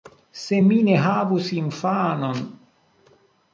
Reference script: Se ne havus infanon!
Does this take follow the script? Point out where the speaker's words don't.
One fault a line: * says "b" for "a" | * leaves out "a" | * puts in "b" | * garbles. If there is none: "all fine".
* puts in "mi"